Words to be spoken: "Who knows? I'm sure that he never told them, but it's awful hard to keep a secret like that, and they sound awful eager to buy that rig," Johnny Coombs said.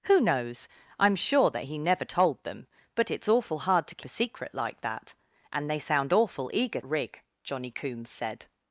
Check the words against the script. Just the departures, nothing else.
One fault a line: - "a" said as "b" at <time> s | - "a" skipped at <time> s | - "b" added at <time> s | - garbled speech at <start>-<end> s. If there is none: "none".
- "keep" skipped at 4.0 s
- "to buy that" skipped at 6.8 s